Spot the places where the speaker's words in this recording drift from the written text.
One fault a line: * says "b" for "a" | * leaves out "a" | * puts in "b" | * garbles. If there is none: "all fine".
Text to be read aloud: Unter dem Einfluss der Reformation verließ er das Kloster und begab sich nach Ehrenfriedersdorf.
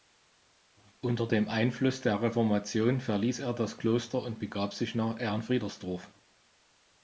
all fine